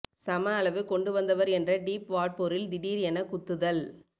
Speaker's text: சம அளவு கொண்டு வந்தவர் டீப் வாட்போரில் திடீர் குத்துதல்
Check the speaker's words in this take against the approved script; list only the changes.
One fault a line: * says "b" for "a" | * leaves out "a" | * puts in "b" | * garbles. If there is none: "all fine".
* puts in "என்ற"
* puts in "என"